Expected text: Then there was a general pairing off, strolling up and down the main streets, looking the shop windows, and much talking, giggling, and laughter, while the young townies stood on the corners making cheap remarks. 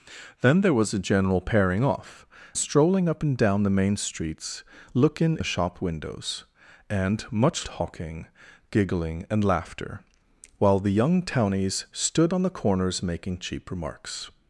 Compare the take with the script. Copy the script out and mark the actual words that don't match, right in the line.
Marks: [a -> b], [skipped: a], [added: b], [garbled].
Then there was a general pairing off, strolling up and down the main streets, looking the shop windows, and much talking, giggling, and laughter, while the young townies stood on the corners making cheap remarks.